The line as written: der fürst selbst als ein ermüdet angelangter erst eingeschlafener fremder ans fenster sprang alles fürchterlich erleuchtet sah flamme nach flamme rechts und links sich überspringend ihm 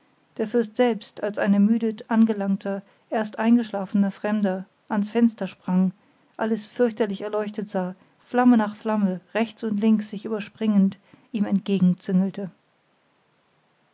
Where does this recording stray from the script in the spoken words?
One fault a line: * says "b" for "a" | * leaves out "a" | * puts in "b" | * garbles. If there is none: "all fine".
all fine